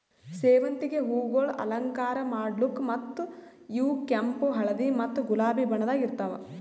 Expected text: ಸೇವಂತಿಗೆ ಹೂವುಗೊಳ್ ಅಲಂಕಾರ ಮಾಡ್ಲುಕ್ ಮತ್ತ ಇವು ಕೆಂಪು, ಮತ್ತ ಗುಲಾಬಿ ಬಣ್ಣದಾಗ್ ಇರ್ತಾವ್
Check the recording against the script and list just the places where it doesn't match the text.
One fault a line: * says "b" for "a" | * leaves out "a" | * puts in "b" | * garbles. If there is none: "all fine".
* puts in "ಹಳದಿ"